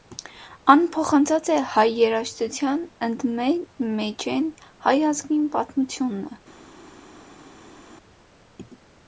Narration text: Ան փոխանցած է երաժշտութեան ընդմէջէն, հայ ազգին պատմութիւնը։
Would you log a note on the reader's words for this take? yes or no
yes